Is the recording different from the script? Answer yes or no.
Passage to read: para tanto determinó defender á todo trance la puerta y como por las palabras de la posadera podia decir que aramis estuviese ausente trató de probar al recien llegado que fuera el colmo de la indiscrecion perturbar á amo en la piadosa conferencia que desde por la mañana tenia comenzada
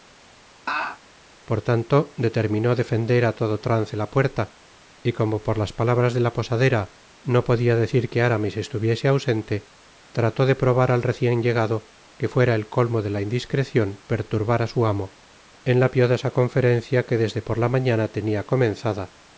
yes